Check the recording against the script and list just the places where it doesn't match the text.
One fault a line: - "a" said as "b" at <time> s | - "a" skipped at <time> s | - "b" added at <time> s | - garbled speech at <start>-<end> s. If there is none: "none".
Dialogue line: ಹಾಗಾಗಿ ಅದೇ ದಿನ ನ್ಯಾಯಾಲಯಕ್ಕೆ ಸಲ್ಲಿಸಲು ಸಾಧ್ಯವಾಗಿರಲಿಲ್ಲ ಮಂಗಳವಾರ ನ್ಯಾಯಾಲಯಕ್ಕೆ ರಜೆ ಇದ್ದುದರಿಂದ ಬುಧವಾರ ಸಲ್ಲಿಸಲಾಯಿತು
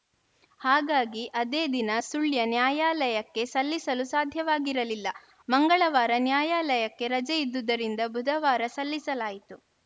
- "ಸುಳ್ಯ" added at 2.0 s